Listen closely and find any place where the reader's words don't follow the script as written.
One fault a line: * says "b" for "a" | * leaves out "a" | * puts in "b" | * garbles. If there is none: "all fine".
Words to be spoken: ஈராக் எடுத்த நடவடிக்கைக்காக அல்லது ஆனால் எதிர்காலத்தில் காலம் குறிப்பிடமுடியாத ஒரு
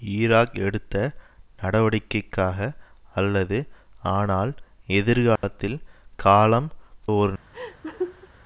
* leaves out "குறிப்பிடமுடியாத"